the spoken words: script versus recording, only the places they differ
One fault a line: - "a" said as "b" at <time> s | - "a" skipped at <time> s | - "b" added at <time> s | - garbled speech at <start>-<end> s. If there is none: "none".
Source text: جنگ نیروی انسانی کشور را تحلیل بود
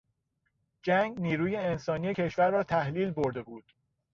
- "برده" added at 3.1 s